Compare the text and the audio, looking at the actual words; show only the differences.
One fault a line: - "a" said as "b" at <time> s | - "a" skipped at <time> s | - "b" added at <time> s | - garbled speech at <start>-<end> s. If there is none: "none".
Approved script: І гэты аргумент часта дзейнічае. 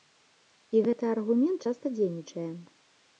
none